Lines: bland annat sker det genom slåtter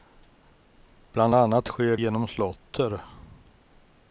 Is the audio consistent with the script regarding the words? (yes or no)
no